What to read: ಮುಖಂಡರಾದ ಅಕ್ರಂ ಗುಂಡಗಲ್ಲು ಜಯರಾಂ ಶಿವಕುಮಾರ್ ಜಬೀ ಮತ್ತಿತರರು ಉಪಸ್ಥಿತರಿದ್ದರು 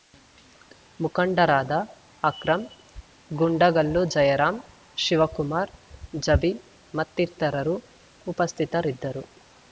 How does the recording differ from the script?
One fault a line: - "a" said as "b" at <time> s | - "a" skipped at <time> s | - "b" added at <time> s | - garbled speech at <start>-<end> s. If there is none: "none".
none